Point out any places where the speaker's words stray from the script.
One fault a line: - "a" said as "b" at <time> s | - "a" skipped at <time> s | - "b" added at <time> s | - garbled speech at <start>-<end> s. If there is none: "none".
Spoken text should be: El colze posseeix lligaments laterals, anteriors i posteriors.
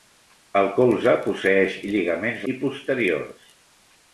- "laterals anteriors" skipped at 2.5 s